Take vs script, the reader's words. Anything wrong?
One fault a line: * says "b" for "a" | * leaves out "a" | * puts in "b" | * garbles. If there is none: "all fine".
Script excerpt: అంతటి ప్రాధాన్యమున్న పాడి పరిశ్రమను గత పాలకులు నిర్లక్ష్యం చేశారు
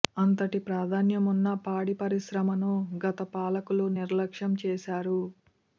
all fine